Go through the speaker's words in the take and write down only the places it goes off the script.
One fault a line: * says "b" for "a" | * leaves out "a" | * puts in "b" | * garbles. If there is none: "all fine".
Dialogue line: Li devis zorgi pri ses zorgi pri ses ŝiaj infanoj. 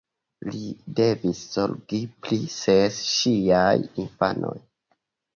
* leaves out "zorgi pri ses"